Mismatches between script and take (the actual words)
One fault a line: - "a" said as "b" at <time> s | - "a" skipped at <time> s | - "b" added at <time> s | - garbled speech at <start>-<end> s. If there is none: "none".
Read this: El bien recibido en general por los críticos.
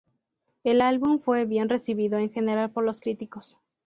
- "álbum fue" added at 0.8 s